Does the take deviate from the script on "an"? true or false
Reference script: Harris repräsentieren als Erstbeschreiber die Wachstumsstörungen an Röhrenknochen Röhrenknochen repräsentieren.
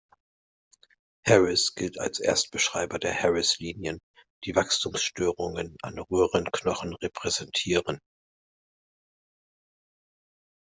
false